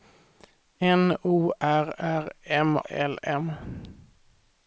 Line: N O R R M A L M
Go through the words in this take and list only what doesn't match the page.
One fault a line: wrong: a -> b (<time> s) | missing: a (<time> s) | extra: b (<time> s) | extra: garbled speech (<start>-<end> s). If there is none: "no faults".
missing: A (2.8 s)